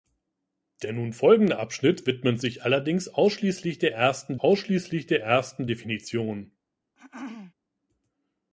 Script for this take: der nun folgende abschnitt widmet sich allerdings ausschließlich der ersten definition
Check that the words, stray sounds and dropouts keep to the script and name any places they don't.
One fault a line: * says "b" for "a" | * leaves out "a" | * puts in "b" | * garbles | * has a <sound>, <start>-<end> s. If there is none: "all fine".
* puts in "ausschließlich der ersten"
* has a throat clearing, 6.9-7.5 s